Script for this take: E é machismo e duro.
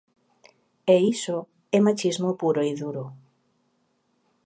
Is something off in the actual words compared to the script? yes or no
yes